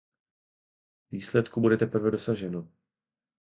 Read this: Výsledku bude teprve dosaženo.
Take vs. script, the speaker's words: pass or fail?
pass